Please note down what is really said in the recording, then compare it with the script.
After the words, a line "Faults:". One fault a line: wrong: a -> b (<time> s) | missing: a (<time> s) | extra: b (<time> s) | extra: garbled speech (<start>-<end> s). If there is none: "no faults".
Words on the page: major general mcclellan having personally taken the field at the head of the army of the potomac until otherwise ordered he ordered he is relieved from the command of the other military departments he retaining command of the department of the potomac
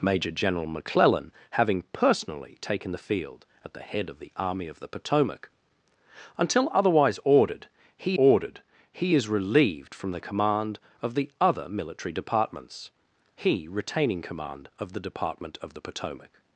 major general mcclellan having personally taken the field at the head of the army of the potomac until otherwise ordered he ordered he is relieved from the command of the other military departments he retaining command of the department of the potomac
Faults:
no faults